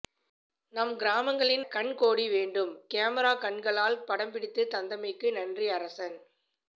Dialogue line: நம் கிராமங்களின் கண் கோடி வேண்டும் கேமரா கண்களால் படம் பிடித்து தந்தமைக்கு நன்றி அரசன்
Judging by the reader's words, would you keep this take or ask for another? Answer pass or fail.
pass